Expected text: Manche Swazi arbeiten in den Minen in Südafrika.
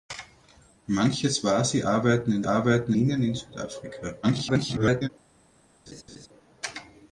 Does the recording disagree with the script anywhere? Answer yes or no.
yes